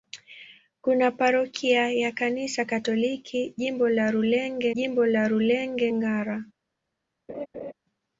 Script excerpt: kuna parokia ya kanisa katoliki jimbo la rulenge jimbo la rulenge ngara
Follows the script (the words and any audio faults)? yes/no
no